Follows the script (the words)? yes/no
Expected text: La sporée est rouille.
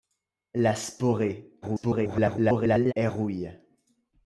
no